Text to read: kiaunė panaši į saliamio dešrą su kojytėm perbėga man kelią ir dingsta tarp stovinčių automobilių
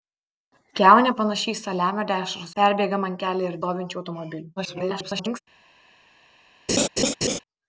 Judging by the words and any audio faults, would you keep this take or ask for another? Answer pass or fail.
fail